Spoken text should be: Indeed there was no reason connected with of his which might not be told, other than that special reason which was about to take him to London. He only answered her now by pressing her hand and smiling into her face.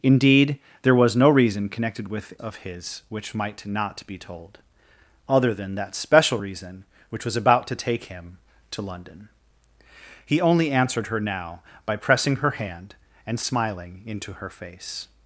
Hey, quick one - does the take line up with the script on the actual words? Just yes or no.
yes